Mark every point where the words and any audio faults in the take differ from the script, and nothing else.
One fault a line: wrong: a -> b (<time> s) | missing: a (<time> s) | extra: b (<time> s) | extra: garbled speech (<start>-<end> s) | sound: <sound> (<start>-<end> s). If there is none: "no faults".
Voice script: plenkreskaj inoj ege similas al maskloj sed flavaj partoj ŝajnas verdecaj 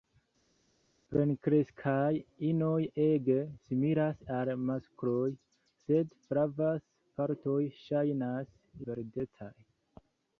no faults